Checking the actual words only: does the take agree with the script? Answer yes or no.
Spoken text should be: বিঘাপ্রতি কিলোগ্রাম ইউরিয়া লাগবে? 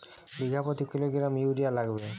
yes